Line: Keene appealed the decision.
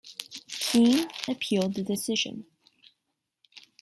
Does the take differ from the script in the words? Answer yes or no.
no